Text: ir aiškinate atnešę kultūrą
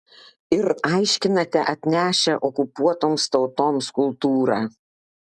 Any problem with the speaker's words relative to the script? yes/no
yes